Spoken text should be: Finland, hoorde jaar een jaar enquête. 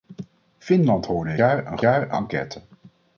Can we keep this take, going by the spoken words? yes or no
yes